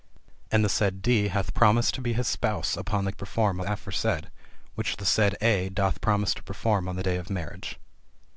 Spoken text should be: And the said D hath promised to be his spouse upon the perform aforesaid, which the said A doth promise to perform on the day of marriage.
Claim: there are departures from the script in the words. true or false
false